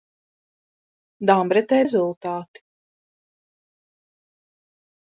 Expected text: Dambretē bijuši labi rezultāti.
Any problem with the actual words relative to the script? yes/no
yes